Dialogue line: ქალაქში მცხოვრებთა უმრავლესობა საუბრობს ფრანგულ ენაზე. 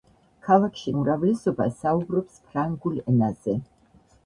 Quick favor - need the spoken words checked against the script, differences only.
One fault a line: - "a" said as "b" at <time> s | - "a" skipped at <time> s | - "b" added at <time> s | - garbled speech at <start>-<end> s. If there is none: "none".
- "მცხოვრებთა" skipped at 0.9 s